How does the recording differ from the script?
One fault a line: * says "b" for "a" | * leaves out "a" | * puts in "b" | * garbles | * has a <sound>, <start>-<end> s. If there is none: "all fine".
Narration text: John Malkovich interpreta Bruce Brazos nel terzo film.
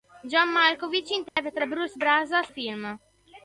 * has a dropout, 1.3-1.4 s
* leaves out "nel terzo"